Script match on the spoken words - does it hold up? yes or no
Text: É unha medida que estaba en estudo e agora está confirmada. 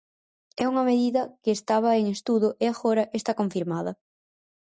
yes